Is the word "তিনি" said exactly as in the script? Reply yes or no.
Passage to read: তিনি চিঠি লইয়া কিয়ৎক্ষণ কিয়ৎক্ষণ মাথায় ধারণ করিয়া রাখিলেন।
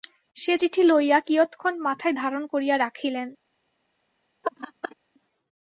no